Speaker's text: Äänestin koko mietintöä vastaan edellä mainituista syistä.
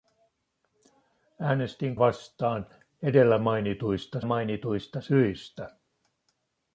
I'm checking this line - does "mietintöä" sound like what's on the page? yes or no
no